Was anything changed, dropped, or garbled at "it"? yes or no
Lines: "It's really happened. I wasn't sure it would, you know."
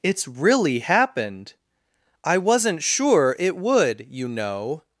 no